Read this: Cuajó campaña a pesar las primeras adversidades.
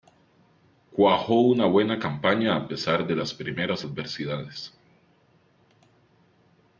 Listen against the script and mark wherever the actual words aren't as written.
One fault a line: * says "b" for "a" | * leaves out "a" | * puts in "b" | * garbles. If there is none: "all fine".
* puts in "una buena"
* puts in "de"